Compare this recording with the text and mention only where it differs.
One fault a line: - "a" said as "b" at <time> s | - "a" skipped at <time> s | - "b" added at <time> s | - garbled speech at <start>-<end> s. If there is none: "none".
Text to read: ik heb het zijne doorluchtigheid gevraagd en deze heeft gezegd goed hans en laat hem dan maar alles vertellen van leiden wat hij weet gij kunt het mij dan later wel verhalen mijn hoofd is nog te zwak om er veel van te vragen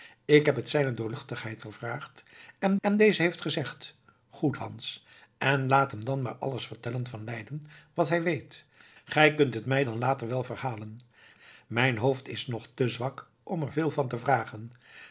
- "en" added at 2.8 s